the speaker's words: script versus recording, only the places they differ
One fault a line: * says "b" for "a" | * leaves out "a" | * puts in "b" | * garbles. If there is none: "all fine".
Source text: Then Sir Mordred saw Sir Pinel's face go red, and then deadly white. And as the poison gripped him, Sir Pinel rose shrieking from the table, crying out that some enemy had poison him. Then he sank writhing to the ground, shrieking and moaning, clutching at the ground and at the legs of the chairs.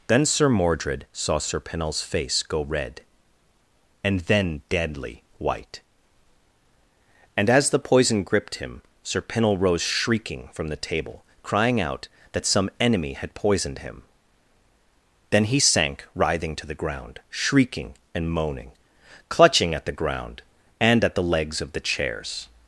* says "poisoned" for "poison"